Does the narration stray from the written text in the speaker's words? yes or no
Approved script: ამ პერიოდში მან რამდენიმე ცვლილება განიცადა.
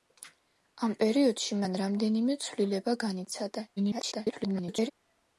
yes